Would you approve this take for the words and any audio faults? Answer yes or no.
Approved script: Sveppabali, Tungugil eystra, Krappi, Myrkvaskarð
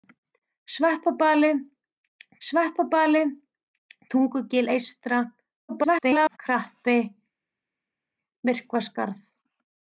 no